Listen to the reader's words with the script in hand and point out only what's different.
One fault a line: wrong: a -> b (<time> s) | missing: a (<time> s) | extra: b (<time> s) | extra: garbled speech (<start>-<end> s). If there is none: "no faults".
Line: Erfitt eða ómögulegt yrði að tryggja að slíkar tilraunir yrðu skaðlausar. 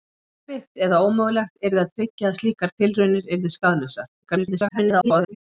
extra: garbled speech (4.2-5.4 s)